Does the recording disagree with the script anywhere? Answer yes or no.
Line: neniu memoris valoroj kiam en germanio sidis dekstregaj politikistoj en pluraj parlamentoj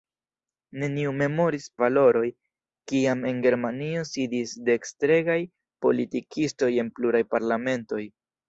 no